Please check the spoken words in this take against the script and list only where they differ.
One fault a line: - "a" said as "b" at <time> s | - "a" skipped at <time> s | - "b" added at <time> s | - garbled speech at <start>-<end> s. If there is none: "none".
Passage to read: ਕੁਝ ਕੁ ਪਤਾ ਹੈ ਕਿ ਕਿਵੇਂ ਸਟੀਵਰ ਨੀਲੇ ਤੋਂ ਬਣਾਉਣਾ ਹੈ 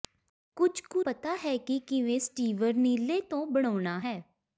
none